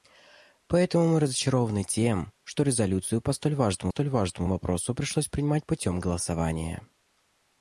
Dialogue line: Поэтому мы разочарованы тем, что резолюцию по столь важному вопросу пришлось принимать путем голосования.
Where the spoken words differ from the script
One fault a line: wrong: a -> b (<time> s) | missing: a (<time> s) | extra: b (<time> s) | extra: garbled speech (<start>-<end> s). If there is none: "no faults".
extra: столь важному (3.9 s)